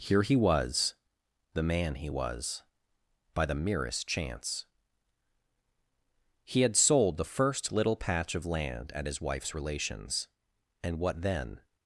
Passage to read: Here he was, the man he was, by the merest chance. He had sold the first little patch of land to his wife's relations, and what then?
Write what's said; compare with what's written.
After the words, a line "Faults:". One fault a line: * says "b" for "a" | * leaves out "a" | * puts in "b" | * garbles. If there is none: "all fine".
Here he was, the man he was, by the merest chance. He had sold the first little patch of land at his wife's relations, and what then?
Faults:
* says "at" for "to"